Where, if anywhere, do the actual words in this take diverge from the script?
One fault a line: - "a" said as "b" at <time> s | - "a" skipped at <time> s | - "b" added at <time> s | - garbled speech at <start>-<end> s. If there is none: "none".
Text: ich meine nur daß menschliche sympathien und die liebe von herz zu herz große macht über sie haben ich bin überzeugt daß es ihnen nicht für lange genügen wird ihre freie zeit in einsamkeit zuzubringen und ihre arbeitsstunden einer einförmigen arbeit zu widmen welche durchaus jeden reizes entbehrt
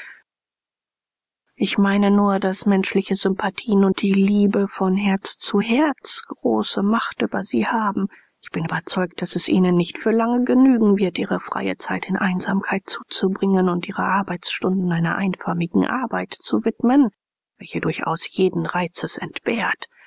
none